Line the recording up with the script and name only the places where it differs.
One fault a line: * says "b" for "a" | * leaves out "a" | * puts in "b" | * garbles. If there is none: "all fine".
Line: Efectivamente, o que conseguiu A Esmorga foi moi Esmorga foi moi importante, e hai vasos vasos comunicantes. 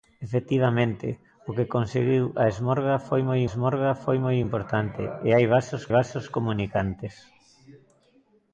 all fine